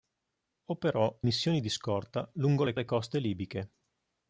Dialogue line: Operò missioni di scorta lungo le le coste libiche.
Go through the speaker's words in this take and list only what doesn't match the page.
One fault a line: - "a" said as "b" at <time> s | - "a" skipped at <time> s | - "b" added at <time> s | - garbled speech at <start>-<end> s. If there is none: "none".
none